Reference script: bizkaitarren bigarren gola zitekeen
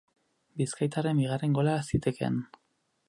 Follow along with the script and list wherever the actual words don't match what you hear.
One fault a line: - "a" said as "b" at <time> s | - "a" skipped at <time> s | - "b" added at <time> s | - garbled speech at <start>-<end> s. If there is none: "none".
none